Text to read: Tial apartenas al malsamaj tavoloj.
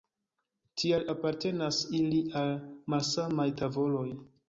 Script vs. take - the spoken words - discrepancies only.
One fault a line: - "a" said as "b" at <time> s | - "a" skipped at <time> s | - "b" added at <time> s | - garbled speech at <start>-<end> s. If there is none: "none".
- "ili" added at 2.0 s